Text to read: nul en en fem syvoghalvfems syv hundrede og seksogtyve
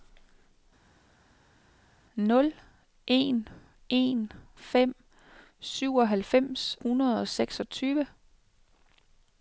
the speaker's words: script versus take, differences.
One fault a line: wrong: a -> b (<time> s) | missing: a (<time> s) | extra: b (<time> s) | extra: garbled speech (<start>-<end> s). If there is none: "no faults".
missing: syv (6.8 s)